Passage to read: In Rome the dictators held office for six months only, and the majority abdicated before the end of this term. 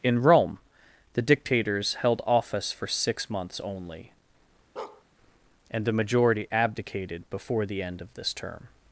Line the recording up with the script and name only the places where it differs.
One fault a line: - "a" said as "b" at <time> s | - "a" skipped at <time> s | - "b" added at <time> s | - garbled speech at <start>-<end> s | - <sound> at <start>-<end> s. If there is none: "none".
- bark at 4.8-5.0 s